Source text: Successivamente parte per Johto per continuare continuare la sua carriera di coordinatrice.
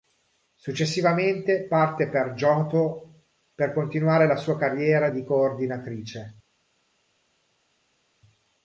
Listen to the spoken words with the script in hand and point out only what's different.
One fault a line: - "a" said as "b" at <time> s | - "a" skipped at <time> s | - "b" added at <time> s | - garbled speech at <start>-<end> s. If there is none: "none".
- "continuare" skipped at 4.3 s